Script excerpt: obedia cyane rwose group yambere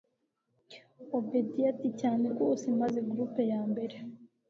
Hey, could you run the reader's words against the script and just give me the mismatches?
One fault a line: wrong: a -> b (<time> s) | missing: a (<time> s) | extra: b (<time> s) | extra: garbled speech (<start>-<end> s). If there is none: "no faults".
extra: ati (1.7 s)
extra: maze (2.8 s)